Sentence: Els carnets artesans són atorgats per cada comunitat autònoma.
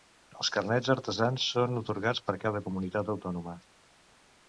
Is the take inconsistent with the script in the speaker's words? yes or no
no